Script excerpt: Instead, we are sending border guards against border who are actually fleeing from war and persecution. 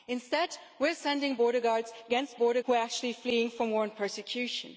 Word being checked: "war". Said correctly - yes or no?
yes